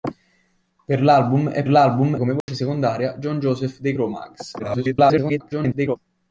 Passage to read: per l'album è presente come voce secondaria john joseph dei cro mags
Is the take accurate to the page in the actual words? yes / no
no